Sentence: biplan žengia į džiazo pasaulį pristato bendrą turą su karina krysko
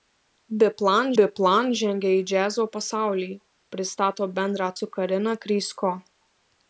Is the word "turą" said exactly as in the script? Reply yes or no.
no